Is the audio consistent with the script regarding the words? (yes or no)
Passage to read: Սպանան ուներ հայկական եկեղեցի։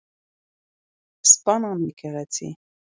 no